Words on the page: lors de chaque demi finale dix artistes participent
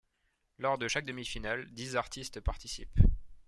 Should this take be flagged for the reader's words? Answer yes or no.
no